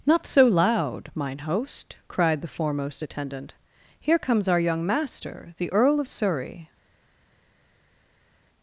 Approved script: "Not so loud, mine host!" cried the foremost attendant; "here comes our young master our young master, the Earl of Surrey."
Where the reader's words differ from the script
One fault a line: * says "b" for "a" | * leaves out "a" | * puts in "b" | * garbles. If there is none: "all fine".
* leaves out "our young master"